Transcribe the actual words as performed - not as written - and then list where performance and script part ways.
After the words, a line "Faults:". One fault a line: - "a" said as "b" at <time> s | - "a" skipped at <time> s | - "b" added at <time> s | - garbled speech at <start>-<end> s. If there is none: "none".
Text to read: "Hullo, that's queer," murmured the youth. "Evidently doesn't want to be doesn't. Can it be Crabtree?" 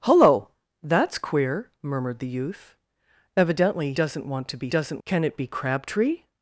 "Hullo, that's queer," murmured the youth. "Evidently doesn't want to be doesn't. Can it be Crabtree?"
Faults:
none